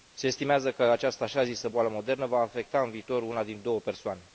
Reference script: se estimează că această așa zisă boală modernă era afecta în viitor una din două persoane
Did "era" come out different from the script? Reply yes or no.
yes